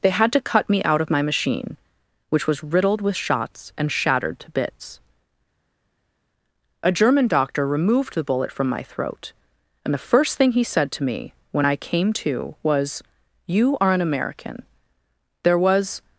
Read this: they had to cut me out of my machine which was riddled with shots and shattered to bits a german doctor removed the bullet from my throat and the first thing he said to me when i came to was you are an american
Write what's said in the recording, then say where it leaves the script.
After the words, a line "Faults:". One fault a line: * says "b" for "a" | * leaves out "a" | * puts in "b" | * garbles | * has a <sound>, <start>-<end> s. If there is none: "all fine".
they had to cut me out of my machine which was riddled with shots and shattered to bits a german doctor removed the bullet from my throat and the first thing he said to me when i came to was you are an american there was
Faults:
* puts in "there was"